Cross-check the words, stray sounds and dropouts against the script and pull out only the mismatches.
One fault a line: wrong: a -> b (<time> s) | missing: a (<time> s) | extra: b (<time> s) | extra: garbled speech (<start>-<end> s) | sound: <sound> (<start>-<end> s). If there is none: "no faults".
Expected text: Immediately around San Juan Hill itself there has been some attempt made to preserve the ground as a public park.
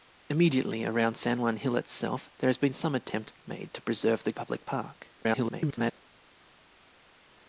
missing: ground as (4.3 s)
extra: garbled speech (5.2-5.9 s)